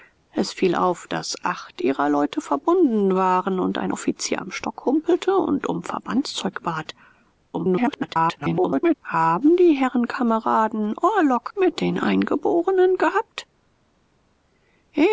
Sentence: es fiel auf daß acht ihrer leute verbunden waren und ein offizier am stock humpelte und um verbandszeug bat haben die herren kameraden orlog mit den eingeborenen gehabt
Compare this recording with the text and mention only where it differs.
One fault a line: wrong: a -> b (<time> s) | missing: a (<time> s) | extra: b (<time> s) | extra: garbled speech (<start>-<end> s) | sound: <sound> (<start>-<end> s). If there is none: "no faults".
extra: garbled speech (7.5-8.9 s)